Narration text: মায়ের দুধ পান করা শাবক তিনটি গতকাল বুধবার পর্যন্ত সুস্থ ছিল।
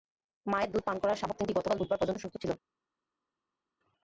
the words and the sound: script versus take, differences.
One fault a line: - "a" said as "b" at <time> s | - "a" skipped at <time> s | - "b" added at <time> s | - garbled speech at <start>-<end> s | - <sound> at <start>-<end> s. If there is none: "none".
none